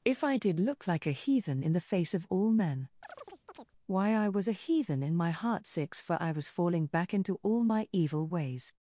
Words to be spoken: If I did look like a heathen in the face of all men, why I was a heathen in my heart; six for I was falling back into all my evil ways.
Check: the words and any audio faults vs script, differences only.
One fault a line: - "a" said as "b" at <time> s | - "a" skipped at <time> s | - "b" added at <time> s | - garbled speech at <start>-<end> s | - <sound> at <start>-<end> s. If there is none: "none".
- chirp at 3.0-3.7 s